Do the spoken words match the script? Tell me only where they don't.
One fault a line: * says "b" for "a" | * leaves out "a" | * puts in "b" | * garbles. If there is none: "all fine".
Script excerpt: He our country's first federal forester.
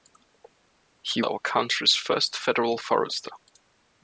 all fine